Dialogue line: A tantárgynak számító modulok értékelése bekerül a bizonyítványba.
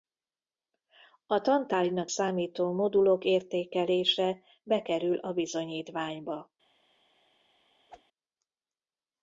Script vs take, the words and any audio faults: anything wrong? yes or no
yes